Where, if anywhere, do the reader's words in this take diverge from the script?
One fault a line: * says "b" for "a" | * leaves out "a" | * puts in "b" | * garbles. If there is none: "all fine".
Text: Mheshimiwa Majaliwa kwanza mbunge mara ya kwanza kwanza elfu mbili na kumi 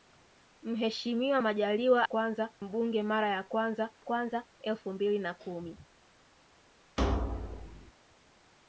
all fine